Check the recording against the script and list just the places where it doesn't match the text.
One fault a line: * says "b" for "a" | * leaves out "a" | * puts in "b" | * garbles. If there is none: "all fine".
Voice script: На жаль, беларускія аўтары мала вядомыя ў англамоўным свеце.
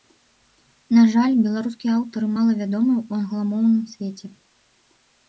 all fine